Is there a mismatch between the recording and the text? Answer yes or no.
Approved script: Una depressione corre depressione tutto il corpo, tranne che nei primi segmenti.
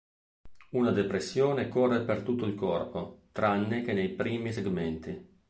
yes